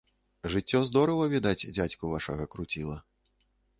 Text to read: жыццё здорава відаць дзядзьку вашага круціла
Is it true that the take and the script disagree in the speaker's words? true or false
false